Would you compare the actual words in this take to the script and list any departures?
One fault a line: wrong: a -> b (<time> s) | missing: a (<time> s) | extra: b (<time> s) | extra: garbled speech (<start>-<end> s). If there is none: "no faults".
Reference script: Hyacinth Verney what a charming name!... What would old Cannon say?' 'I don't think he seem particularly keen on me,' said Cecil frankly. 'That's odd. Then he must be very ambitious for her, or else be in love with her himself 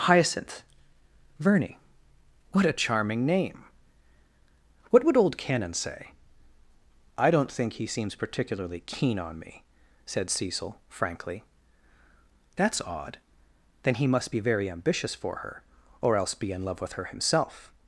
wrong: seem -> seems (7.8 s)